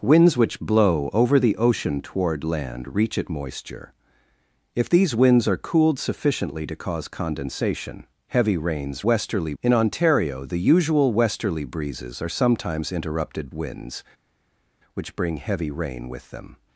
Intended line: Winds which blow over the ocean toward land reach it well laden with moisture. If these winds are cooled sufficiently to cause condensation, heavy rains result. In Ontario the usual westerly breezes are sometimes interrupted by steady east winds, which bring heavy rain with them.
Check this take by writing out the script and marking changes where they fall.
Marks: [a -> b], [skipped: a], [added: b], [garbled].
Winds which blow over the ocean toward land reach it [skipped: well laden with] moisture. If these winds are cooled sufficiently to cause condensation, heavy rains [result. -> westerly] In Ontario the usual westerly breezes are sometimes interrupted [skipped: by steady east] winds, which bring heavy rain with them.